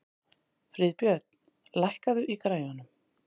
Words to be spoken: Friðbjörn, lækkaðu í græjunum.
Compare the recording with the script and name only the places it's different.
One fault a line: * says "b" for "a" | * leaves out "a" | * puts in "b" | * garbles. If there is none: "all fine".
all fine